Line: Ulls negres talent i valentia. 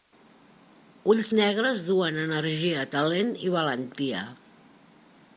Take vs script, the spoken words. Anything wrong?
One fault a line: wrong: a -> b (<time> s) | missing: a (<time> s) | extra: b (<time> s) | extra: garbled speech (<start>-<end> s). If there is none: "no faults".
extra: duen energia (1.9 s)